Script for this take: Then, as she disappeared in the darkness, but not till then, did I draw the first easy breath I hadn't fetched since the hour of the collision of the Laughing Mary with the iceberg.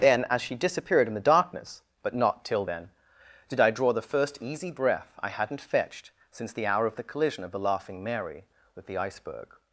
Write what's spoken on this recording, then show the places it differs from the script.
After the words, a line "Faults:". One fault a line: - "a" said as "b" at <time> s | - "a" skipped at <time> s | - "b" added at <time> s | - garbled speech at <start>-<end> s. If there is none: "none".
Then, as she disappeared in the darkness, but not till then, did I draw the first easy breath I hadn't fetched since the hour of the collision of the Laughing Mary with the iceberg.
Faults:
none